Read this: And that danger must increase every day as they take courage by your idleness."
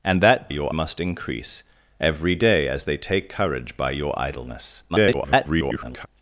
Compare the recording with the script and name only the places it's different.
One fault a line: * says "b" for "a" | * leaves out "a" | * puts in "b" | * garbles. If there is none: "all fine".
* says "your" for "danger"
* garbles